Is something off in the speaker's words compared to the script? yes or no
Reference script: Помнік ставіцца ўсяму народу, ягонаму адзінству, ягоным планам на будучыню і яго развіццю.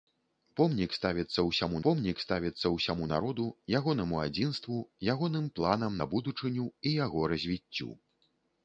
yes